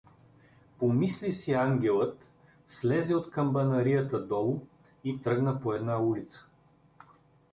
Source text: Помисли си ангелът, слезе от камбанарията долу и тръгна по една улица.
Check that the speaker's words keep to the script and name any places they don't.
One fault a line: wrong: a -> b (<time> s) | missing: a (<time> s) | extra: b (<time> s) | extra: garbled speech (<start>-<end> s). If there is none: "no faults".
no faults